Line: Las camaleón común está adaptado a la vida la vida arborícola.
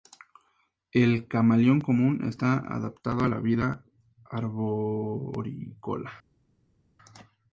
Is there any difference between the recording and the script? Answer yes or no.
yes